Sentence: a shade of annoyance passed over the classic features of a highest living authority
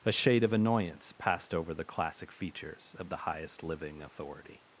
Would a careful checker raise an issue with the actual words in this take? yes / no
yes